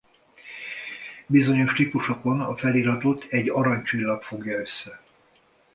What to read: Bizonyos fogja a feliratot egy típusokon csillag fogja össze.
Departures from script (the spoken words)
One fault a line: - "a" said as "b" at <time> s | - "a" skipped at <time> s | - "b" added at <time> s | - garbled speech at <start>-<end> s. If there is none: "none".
- "fogja" said as "típusokon" at 1.7 s
- "típusokon" said as "arany" at 3.5 s